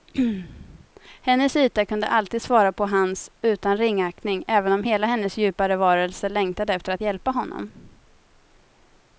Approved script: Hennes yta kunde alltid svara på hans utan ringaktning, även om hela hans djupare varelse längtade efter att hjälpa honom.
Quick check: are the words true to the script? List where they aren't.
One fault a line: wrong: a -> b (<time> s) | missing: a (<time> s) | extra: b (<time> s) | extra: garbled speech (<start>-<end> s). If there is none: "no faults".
wrong: hans -> hennes (5.1 s)